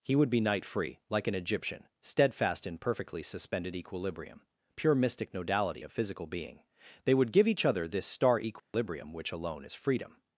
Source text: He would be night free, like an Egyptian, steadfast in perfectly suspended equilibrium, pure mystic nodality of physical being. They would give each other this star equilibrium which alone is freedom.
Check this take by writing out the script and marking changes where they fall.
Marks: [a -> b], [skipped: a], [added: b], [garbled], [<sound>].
He would be night free, like an Egyptian, steadfast in perfectly suspended equilibrium, pure mystic nodality of physical being. They would give each other this star equilibrium [dropout] which alone is freedom.